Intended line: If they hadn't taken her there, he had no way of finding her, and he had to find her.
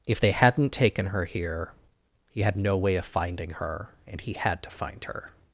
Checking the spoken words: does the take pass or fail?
fail